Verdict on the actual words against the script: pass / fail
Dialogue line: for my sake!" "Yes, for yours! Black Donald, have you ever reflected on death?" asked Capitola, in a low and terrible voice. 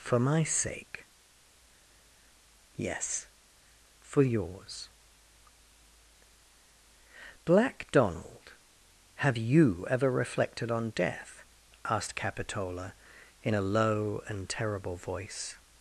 pass